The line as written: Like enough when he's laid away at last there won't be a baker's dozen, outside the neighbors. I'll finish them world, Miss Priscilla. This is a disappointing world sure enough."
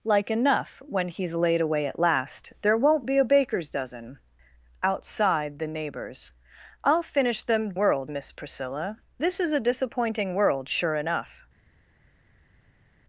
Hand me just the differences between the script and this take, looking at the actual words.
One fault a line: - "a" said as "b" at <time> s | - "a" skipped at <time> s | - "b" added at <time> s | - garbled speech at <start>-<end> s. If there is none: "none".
none